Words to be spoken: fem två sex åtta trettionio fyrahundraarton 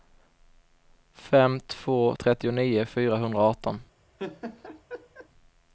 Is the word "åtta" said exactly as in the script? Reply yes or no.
no